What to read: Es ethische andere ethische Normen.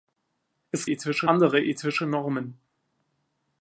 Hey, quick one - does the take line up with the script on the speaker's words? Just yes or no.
yes